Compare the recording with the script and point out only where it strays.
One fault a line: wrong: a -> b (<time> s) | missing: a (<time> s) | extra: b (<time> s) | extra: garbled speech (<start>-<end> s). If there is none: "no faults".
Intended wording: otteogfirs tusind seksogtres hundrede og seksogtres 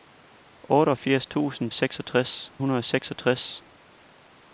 no faults